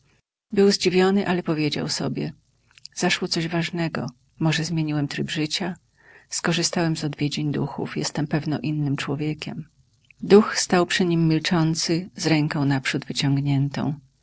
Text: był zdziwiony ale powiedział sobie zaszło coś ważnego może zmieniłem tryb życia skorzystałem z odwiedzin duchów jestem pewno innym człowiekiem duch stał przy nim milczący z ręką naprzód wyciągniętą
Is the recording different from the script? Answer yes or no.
no